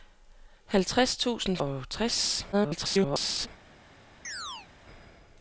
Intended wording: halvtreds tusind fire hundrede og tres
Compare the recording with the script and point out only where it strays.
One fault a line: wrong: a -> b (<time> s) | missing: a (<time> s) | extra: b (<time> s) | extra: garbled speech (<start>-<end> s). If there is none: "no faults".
missing: fire hundrede (1.6 s)
extra: garbled speech (2.5-3.5 s)